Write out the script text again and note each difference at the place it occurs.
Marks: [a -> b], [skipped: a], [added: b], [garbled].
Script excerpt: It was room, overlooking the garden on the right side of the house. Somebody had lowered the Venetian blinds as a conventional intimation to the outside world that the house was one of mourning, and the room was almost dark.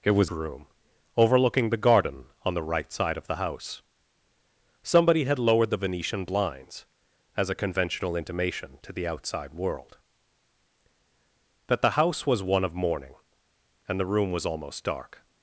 It was room, overlooking the garden on the right side of the house. Somebody had lowered the Venetian blinds as a conventional intimation to the outside world that the house was one of mourning, and the room was almost dark.